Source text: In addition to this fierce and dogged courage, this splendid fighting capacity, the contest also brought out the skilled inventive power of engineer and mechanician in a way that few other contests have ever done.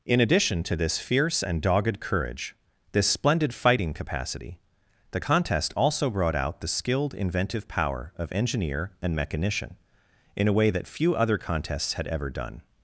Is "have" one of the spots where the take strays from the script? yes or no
yes